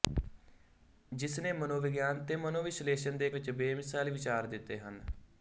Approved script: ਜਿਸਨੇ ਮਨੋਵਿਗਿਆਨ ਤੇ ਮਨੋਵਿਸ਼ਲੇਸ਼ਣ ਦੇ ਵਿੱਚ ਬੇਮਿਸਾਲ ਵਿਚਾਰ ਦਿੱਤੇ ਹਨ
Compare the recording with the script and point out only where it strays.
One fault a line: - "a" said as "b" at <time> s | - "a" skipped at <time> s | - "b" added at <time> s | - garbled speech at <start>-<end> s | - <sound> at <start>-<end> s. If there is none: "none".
none